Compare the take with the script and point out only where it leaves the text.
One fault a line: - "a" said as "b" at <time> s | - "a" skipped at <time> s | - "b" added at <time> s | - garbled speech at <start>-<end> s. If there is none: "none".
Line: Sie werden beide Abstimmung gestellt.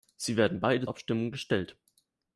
none